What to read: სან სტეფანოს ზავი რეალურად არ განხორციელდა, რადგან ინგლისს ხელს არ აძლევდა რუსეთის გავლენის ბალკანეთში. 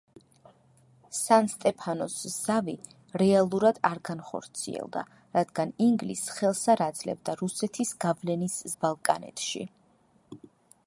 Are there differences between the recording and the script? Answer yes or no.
no